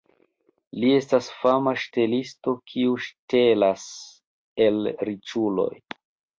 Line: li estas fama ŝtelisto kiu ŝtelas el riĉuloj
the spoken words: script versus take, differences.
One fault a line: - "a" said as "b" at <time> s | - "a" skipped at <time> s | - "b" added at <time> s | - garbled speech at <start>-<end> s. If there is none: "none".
none